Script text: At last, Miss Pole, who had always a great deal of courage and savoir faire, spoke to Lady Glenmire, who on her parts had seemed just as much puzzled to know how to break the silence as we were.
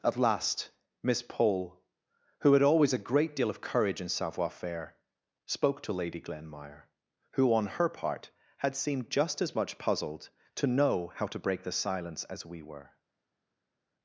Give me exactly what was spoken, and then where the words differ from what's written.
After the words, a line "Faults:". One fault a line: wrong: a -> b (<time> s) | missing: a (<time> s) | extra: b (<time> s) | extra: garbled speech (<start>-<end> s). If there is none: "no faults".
At last, Miss Pole, who had always a great deal of courage and savoir faire, spoke to Lady Glenmire, who on her part had seemed just as much puzzled to know how to break the silence as we were.
Faults:
wrong: parts -> part (7.9 s)